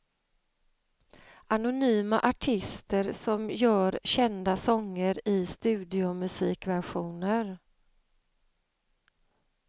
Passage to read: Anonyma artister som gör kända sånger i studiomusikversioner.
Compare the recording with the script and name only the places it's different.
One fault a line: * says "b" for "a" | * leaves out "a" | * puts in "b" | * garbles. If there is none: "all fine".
all fine